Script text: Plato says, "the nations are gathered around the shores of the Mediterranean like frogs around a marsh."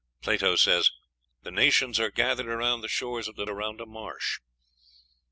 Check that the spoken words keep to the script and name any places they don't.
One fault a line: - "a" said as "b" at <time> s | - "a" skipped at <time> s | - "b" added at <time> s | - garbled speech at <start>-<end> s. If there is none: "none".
- "Mediterranean like frogs" skipped at 3.5 s